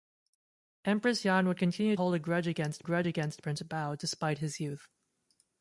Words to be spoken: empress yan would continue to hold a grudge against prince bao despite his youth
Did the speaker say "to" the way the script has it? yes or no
no